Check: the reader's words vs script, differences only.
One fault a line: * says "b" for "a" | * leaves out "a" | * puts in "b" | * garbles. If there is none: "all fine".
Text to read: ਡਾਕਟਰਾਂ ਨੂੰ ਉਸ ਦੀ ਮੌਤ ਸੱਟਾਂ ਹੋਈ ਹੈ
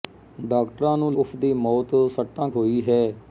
all fine